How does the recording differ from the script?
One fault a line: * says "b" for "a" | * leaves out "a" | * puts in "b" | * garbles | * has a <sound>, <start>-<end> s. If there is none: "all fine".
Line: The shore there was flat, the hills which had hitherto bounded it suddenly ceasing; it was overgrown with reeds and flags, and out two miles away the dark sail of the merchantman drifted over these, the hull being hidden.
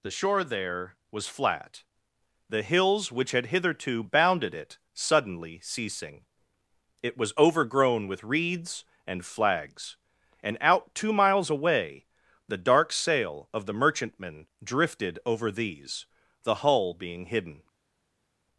all fine